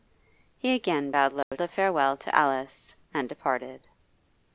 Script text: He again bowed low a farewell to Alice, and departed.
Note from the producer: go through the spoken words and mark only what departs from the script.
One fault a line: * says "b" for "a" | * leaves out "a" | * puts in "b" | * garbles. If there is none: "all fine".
all fine